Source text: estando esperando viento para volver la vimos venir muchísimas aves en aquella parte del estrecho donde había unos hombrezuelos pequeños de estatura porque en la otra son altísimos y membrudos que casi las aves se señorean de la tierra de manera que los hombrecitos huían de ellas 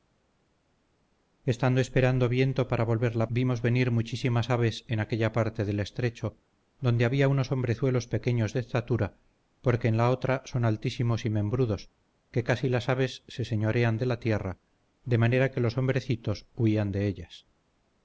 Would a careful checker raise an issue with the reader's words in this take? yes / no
no